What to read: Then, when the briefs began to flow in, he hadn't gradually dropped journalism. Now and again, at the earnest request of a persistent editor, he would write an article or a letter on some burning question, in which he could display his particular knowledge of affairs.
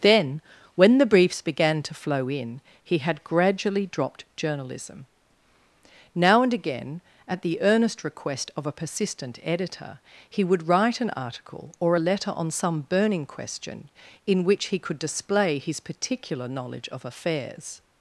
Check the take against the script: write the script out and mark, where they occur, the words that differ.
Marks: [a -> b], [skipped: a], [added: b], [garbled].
Then, when the briefs began to flow in, he [hadn't -> had] gradually dropped journalism. Now and again, at the earnest request of a persistent editor, he would write an article or a letter on some burning question, in which he could display his particular knowledge of affairs.